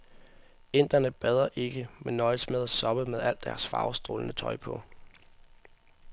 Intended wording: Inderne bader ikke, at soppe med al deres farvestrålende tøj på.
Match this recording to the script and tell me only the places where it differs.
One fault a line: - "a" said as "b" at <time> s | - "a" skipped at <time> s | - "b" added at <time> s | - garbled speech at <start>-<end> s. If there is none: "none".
- "men nøjes med" added at 2.0 s